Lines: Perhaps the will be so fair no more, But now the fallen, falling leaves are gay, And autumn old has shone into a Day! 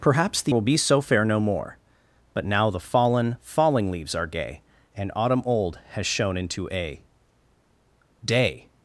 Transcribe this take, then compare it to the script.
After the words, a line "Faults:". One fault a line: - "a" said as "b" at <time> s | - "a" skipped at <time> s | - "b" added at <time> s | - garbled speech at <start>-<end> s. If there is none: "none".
Perhaps the will be so fair no more, But now the fallen, falling leaves are gay, And autumn old has shone into a Day!
Faults:
none